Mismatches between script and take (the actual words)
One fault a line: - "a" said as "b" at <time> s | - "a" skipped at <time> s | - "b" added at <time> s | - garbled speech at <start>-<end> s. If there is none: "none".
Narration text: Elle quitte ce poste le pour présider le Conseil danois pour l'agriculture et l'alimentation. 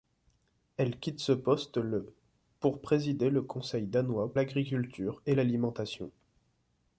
- "pour" skipped at 4.3 s